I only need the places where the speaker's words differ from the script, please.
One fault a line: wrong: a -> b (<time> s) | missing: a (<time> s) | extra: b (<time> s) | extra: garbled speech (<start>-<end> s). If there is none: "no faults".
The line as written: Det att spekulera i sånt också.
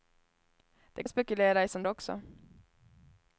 no faults